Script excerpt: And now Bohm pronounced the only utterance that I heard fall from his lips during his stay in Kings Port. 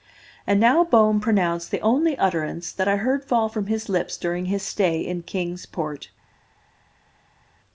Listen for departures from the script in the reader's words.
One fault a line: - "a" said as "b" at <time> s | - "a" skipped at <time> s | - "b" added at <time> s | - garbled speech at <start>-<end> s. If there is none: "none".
none